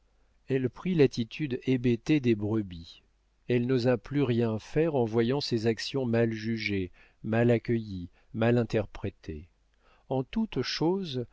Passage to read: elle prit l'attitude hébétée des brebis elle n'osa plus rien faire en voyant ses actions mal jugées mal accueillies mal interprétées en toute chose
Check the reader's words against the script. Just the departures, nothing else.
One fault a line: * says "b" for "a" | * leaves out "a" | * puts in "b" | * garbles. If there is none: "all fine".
all fine